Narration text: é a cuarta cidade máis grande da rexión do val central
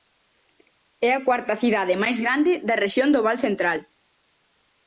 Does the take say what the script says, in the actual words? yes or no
yes